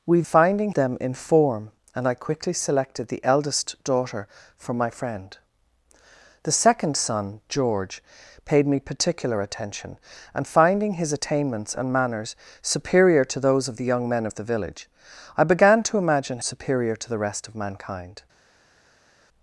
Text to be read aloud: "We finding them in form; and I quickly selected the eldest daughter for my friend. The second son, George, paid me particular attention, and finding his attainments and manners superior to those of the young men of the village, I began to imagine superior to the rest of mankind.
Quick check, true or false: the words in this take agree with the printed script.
true